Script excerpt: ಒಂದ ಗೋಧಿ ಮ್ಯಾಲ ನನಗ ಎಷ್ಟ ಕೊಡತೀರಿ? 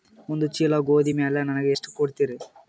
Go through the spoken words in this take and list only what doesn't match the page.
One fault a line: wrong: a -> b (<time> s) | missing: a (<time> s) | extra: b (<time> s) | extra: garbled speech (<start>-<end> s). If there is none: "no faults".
extra: ಚೀಲ (0.6 s)